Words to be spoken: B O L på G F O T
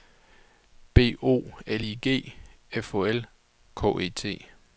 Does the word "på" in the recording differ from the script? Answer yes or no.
yes